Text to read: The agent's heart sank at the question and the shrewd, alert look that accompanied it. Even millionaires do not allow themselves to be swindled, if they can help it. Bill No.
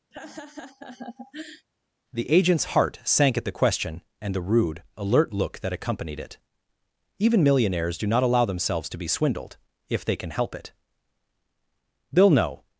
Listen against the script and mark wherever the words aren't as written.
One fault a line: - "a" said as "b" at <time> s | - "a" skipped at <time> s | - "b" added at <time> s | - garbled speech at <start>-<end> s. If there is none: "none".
- "shrewd" said as "rude" at 4.4 s